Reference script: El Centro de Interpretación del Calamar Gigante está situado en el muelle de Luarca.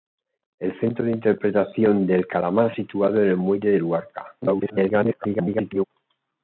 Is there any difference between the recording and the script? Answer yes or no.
yes